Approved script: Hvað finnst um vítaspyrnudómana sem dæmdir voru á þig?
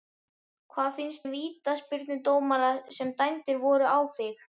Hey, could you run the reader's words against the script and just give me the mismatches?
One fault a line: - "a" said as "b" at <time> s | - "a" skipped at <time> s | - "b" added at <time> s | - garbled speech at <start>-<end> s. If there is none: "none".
none